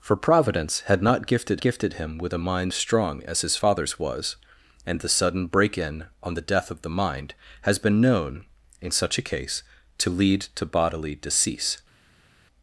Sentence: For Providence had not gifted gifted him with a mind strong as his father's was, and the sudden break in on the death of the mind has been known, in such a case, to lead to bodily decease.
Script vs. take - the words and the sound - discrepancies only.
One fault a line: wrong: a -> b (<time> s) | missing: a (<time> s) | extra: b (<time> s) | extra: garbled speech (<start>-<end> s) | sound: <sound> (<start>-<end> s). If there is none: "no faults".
no faults